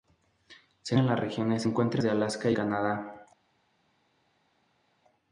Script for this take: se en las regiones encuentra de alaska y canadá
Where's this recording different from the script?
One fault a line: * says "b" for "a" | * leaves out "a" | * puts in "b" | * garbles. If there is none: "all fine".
all fine